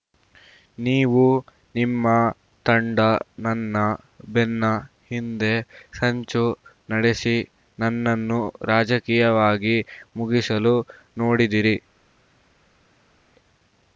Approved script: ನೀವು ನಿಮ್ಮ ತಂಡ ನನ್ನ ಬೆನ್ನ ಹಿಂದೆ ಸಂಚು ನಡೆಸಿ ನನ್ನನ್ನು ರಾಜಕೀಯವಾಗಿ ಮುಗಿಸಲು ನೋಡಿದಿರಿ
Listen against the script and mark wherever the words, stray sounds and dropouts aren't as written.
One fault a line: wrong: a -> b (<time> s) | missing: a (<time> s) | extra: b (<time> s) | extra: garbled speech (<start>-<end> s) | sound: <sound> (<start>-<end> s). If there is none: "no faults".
no faults